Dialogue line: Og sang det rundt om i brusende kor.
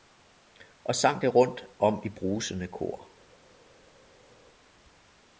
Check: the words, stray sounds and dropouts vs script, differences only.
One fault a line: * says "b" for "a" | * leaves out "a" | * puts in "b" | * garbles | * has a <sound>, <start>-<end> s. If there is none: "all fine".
all fine